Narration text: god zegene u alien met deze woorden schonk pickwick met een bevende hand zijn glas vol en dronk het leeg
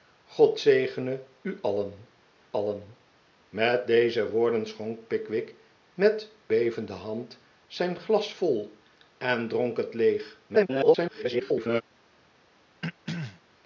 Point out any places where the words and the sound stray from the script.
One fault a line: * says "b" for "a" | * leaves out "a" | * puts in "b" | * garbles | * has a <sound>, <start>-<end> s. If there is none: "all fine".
* puts in "alien"
* leaves out "een"
* garbles
* has a throat clearing, 12.8-13.4 s